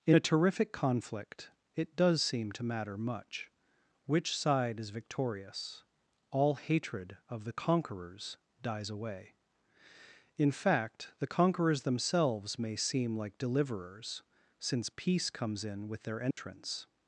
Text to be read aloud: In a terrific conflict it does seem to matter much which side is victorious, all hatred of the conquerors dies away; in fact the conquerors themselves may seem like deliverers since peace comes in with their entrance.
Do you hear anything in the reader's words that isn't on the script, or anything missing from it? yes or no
no